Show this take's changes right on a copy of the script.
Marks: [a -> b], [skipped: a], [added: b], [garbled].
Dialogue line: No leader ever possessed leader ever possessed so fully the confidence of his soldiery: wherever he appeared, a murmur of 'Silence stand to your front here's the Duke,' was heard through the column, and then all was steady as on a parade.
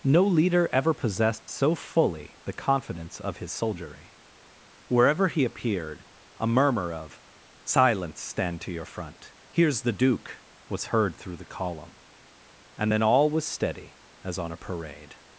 No leader ever possessed [skipped: leader ever possessed] so fully the confidence of his soldiery: wherever he appeared, a murmur of 'Silence stand to your front here's the Duke,' was heard through the column, and then all was steady as on a parade.